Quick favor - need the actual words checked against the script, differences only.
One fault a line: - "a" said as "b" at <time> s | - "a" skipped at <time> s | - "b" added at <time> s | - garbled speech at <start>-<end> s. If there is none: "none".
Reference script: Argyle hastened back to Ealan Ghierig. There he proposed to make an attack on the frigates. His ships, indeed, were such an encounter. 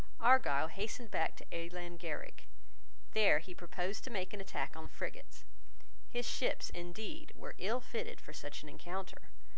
- "ill fitted for" added at 7.6 s